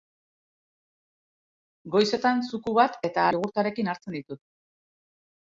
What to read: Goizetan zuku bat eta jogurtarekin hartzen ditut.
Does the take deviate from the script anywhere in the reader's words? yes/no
no